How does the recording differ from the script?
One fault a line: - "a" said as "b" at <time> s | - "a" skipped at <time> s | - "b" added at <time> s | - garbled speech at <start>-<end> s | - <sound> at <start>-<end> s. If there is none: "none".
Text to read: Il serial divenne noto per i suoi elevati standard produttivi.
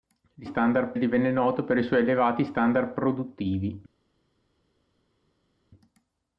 - "serial" said as "standard" at 0.4 s